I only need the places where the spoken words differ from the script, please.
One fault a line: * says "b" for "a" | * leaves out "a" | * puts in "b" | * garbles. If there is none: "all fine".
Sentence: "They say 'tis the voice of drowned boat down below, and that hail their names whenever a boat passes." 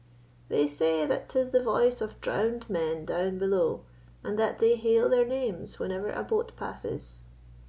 * puts in "that"
* says "men" for "boat"
* puts in "they"